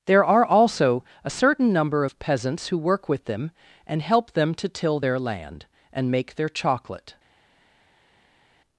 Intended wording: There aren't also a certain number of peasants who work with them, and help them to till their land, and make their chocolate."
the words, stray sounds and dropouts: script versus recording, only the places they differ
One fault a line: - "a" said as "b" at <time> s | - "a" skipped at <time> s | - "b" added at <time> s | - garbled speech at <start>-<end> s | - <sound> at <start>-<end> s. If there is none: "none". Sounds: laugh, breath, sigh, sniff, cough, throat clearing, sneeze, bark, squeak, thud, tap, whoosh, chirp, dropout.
- "aren't" said as "are" at 0.2 s